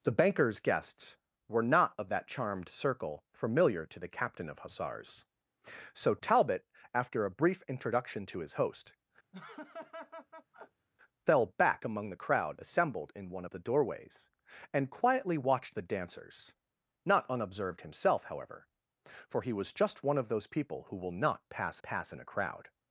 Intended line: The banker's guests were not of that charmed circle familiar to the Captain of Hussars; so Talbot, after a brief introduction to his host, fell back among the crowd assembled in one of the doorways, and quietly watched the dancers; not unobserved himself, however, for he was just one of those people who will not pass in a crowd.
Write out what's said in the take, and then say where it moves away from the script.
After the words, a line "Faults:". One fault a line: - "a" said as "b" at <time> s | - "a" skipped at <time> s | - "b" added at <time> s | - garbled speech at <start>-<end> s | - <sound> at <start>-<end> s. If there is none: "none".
The banker's guests were not of that charmed circle familiar to the Captain of Hussars; so Talbot, after a brief introduction to his host, fell back among the crowd assembled in one of the doorways, and quietly watched the dancers; not unobserved himself, however, for he was just one of those people who will not pass pass in a crowd.
Faults:
- laugh at 9.3-10.9 s
- "pass" added at 21.8 s